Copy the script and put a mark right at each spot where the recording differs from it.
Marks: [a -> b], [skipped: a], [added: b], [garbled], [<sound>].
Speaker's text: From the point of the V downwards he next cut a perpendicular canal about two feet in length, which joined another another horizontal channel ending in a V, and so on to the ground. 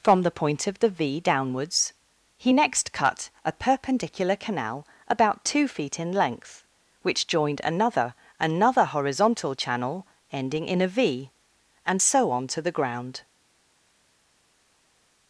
From the point of the V downwards he next cut a perpendicular canal about two feet in length, which joined another another horizontal channel ending in a V, and so on to the ground.